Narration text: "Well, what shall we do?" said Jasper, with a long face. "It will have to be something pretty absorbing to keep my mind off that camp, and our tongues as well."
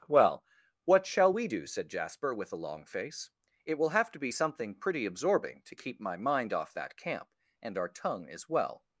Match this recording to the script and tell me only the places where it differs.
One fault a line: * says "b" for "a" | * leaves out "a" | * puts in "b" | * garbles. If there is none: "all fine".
* says "tongue" for "tongues"